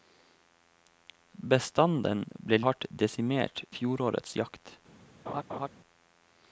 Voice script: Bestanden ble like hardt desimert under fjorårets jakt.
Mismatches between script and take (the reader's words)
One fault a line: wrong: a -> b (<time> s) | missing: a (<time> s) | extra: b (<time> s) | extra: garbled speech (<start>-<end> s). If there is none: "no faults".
missing: like (2.6 s)
missing: under (3.6 s)